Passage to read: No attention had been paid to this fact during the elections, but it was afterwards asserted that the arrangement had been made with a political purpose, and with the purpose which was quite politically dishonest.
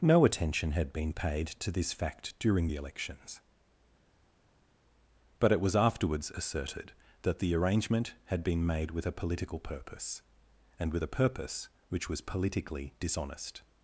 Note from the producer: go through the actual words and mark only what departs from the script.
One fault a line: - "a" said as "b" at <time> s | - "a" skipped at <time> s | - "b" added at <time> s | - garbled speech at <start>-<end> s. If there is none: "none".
- "the" said as "a" at 11.0 s
- "quite" skipped at 12.2 s